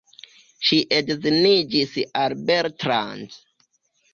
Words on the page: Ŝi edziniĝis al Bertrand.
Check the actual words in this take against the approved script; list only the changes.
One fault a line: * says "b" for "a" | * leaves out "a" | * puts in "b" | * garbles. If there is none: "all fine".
all fine